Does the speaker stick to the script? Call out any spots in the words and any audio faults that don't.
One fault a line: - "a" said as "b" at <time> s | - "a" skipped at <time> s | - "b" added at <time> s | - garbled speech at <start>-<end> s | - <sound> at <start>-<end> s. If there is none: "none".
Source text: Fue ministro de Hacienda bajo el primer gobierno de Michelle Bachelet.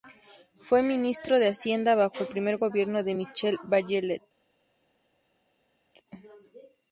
none